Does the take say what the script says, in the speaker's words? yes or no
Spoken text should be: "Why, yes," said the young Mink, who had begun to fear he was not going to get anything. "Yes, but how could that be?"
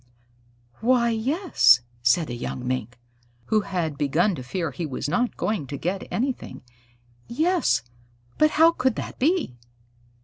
yes